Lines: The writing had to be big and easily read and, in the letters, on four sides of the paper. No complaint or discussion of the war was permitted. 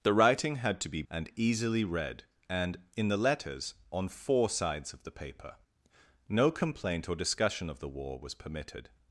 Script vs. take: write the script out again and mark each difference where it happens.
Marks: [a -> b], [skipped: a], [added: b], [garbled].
The writing had to be [skipped: big] and easily read and, in the letters, on four sides of the paper. No complaint or discussion of the war was permitted.